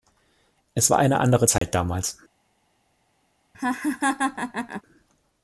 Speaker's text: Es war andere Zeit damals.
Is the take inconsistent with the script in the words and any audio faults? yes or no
yes